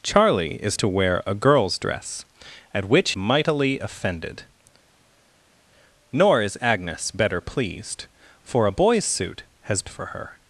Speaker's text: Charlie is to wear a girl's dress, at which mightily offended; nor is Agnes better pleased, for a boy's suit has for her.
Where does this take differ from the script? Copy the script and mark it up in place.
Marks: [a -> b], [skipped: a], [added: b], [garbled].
Charlie is to wear a girl's dress, at which mightily offended; nor is Agnes better pleased, for a boy's suit has for her.